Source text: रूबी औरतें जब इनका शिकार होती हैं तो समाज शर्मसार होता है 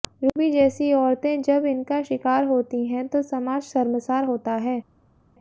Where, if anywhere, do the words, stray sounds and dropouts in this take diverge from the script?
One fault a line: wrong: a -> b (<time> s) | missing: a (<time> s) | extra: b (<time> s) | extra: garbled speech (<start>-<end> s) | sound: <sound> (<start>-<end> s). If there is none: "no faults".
extra: जैसी (0.5 s)